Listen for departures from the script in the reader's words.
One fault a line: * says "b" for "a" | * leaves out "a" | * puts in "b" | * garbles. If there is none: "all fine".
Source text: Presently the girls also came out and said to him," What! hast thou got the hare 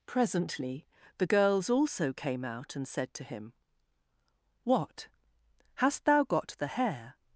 all fine